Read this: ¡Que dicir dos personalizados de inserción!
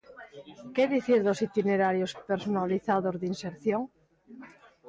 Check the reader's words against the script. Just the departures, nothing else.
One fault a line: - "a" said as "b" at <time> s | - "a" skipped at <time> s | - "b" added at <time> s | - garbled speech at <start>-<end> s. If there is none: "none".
- "itinerarios" added at 1.5 s